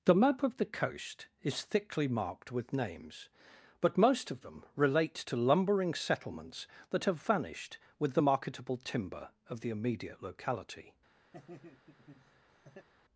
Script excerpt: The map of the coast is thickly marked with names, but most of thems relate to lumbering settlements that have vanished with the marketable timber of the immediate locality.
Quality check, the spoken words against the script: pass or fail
fail